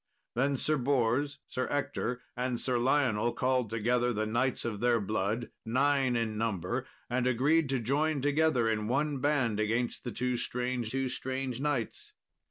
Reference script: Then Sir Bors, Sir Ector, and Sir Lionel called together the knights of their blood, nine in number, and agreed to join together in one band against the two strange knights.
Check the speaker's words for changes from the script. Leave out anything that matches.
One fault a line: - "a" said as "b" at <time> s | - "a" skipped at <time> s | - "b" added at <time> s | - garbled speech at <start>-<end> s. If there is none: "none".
- "two strange" added at 10.8 s